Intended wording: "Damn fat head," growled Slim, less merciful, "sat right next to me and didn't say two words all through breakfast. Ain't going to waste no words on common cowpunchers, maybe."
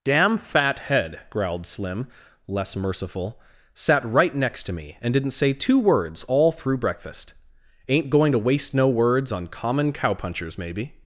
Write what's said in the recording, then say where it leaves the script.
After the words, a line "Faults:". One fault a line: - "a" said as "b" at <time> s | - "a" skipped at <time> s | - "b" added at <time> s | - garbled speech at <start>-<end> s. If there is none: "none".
"Damn fat head," growled Slim, less merciful, "sat right next to me and didn't say two words all through breakfast. Ain't going to waste no words on common cowpunchers, maybe."
Faults:
none